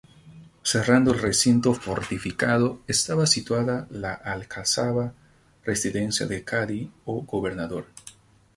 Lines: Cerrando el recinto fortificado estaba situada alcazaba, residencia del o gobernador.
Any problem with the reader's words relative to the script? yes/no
yes